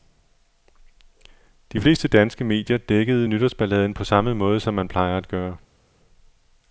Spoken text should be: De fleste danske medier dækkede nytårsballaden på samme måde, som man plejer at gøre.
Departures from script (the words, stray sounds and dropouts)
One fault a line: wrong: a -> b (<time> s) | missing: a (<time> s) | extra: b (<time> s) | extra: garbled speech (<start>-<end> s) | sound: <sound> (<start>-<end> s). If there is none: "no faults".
no faults